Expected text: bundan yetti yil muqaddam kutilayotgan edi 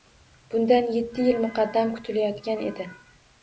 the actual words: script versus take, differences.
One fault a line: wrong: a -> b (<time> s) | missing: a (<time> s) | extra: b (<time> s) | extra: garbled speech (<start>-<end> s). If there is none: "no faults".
no faults